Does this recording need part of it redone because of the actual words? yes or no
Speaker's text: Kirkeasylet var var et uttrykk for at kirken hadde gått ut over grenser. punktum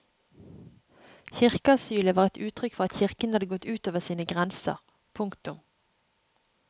yes